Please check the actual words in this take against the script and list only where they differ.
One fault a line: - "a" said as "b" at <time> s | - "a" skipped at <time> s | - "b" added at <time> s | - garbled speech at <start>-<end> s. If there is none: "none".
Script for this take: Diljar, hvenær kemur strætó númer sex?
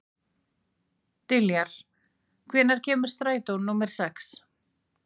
none